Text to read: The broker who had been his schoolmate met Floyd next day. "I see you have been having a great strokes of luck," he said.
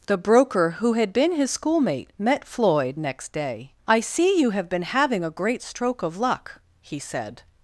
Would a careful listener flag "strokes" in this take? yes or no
yes